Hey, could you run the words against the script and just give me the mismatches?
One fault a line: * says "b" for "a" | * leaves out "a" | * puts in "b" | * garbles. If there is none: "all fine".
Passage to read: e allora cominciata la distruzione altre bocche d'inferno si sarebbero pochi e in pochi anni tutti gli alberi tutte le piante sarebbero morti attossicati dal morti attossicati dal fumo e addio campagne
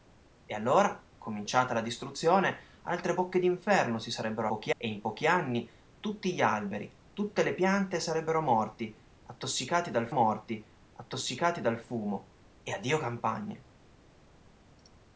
all fine